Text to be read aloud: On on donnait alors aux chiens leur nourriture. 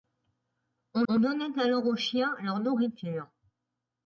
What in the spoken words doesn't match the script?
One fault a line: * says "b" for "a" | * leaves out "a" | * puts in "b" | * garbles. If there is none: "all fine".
all fine